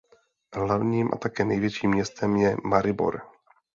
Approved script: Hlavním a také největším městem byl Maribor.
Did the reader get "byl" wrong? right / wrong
wrong